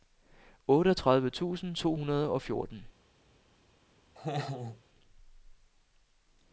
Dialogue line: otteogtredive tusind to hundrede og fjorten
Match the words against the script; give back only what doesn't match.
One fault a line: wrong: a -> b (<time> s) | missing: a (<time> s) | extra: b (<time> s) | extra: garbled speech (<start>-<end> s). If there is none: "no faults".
no faults